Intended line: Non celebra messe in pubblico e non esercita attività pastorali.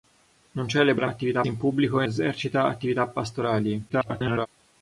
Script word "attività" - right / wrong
right